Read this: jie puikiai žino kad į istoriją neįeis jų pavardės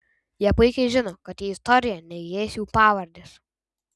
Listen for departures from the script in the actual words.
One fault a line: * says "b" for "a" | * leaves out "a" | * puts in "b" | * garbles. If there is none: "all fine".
all fine